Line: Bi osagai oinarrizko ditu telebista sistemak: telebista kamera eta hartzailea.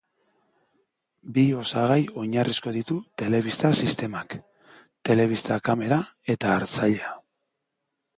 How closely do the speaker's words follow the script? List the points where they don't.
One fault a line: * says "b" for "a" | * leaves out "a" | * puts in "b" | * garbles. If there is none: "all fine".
all fine